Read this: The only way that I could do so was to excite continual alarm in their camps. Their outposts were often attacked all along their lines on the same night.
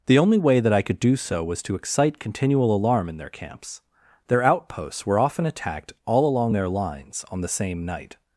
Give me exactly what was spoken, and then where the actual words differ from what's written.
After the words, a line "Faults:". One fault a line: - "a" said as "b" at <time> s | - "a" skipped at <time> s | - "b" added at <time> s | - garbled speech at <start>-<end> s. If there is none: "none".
The only way that I could do so was to excite continual alarm in their camps. Their outposts were often attacked all along their lines on the same night.
Faults:
none